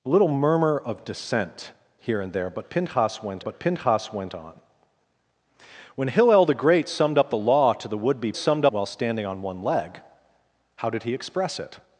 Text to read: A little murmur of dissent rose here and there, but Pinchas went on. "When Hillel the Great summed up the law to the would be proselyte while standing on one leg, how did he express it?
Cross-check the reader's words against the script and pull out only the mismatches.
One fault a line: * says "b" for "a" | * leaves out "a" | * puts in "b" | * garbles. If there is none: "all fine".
* leaves out "rose"
* puts in "but Pinchas went"
* says "summed" for "proselyte"